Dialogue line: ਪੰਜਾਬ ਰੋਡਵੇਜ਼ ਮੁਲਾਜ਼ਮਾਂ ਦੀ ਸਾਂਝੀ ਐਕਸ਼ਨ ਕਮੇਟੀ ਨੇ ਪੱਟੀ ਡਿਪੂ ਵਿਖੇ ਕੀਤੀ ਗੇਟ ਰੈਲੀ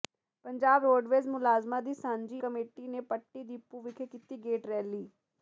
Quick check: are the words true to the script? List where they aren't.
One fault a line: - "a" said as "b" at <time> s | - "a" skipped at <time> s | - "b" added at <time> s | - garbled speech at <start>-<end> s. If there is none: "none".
- "ਐਕਸ਼ਨ" skipped at 2.4 s